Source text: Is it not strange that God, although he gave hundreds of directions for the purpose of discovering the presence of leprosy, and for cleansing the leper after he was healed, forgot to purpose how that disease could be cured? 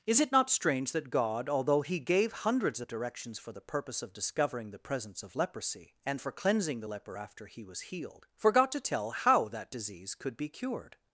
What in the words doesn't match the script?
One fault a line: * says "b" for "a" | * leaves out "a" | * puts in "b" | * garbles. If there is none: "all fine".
* says "tell" for "purpose"